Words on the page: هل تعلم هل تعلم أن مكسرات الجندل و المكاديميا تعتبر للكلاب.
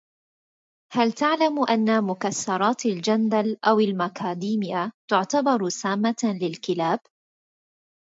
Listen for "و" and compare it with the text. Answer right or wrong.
wrong